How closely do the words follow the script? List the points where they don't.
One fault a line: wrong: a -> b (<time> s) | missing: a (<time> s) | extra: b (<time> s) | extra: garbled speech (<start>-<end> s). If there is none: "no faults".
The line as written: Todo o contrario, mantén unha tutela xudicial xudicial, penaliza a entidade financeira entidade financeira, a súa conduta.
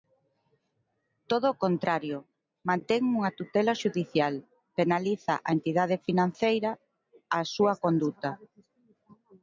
missing: xudicial (4.3 s)
missing: entidade financeira (6.7 s)